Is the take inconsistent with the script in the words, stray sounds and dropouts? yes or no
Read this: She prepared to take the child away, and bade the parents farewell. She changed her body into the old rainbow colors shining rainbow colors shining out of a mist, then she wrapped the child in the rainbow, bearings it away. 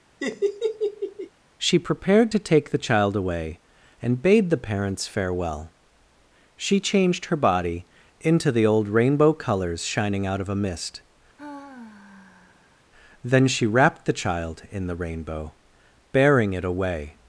yes